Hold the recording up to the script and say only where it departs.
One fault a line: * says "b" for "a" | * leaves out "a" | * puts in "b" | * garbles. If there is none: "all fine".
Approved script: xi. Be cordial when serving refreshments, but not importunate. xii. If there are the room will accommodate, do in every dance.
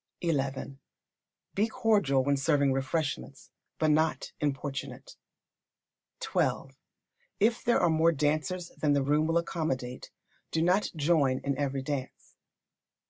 * puts in "more dancers than"
* puts in "not join"